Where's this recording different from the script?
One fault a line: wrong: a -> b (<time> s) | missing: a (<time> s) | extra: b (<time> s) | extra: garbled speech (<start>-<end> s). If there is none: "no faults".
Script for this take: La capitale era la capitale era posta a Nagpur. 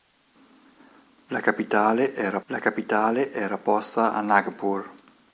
no faults